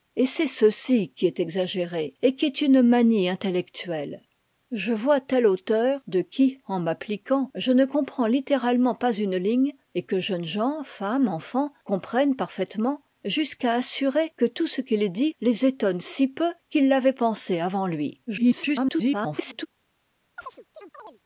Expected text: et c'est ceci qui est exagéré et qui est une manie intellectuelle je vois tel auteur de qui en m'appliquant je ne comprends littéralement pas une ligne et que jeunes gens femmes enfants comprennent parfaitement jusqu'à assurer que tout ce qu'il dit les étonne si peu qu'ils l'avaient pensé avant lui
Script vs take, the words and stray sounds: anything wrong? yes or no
yes